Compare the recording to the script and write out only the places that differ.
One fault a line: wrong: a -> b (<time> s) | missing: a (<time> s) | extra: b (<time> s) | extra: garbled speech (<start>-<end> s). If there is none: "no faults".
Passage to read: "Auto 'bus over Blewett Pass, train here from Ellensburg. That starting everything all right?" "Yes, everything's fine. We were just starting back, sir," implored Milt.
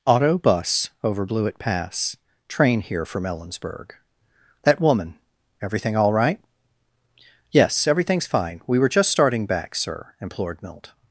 wrong: starting -> woman (4.8 s)